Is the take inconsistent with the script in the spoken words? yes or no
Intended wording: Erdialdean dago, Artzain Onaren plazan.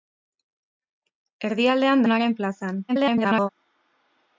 yes